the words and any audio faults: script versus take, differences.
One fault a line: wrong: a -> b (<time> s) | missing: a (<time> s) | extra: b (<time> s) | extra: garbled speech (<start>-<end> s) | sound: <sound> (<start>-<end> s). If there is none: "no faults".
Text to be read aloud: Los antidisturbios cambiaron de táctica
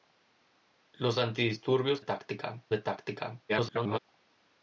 wrong: cambiaron -> táctica (2.0 s)
extra: garbled speech (3.5-4.0 s)